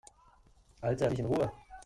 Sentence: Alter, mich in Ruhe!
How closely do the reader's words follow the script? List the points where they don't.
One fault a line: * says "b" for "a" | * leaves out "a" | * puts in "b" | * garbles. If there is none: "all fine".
all fine